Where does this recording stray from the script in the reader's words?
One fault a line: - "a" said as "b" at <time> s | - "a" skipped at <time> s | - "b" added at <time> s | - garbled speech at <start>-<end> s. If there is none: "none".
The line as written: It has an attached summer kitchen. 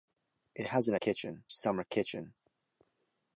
- "attached" said as "kitchen" at 0.9 s